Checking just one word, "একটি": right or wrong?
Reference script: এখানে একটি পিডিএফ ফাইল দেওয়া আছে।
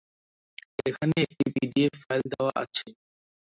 right